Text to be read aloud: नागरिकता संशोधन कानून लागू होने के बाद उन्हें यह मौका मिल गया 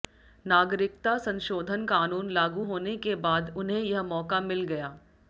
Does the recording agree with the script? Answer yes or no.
yes